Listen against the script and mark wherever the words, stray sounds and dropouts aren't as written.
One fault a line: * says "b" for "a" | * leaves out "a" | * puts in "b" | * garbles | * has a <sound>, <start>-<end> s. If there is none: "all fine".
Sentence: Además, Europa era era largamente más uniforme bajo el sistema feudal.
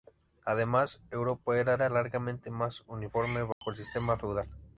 * has a dropout, 3.5-3.6 s